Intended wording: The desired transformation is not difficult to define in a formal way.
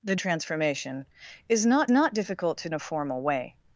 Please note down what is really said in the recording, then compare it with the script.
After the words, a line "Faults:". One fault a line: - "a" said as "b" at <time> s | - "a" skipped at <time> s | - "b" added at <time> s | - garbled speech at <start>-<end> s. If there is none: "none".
The transformation is not not difficult to a formal way.
Faults:
- "desired" skipped at 0.1 s
- "not" added at 1.9 s
- "define in" skipped at 2.7 s